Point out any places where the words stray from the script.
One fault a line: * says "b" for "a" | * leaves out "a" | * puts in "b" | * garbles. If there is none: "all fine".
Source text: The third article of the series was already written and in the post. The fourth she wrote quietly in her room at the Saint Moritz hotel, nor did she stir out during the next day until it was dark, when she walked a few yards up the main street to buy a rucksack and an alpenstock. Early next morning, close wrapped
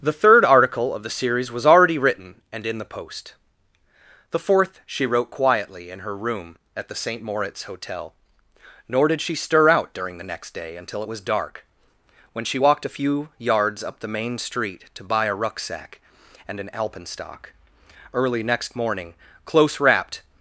all fine